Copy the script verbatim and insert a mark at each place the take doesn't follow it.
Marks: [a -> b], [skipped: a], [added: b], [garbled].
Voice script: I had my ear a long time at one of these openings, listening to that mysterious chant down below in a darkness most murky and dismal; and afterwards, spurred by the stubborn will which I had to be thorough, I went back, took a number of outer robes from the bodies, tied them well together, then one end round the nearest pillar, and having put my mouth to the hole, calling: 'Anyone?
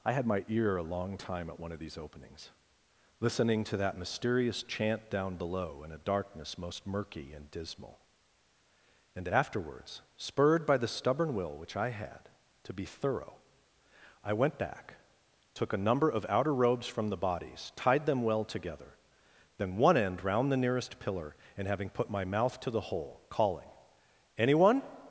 I had my ear a long time at one of these openings, listening to that mysterious chant down below in a darkness most murky and dismal; and afterwards, spurred by the stubborn will which I had to be thorough, I went back, took a number of outer robes from the bodies, tied them well together, then one end round the nearest pillar, and having put my mouth to the hole, calling: 'Anyone?